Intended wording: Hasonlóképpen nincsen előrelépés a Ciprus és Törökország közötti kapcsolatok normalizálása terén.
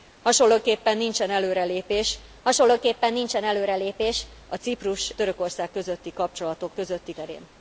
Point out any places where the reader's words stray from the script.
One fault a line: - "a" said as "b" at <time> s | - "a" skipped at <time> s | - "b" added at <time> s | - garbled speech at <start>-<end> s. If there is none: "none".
- "hasonlóképpen nincsen előrelépés" added at 2.4 s
- "és" skipped at 5.1 s
- "normalizálása" said as "közötti" at 6.7 s